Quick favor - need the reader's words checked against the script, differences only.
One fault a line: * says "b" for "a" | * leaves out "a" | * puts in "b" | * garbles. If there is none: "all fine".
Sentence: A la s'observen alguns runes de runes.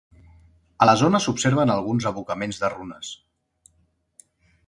* puts in "zona"
* says "abocaments" for "runes"